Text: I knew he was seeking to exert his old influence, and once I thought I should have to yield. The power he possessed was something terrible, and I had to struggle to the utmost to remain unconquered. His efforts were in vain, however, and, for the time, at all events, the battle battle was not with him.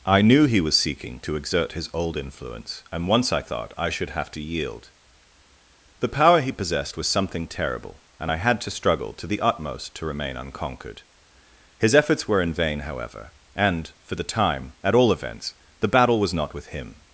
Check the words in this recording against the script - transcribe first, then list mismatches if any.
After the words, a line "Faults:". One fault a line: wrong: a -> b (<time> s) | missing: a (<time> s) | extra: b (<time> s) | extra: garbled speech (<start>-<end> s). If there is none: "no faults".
I knew he was seeking to exert his old influence, and once I thought I should have to yield. The power he possessed was something terrible, and I had to struggle to the utmost to remain unconquered. His efforts were in vain, however, and, for the time, at all events, the battle was not with him.
Faults:
missing: battle (16.2 s)